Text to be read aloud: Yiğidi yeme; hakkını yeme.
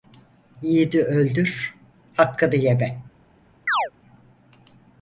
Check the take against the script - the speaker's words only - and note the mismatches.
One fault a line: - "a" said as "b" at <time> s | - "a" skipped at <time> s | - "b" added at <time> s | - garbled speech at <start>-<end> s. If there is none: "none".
- "yeme" said as "öldür" at 1.0 s